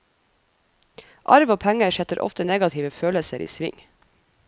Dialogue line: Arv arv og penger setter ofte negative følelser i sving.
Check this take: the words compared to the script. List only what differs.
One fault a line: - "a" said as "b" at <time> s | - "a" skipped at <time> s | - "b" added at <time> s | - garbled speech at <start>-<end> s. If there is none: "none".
- "arv" skipped at 1.5 s